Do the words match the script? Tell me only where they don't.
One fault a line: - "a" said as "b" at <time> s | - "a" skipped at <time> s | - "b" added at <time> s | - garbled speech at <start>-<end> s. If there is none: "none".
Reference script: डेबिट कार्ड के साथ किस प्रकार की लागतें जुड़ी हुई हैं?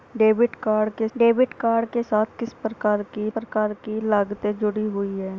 - "डेबिट कार्ड के" added at 1.2 s
- "प्रकार की" added at 3.3 s